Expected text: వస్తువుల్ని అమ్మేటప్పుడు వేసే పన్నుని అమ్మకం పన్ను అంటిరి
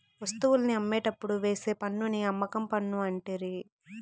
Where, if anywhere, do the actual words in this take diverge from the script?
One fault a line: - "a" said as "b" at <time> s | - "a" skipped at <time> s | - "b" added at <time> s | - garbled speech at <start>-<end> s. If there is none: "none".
none